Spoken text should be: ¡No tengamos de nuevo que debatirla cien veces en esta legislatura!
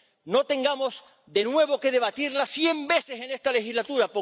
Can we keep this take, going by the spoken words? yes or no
yes